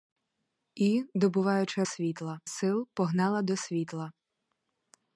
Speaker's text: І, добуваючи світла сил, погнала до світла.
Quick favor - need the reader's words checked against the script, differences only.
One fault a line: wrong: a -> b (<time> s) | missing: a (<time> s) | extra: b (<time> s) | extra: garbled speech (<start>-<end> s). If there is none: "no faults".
no faults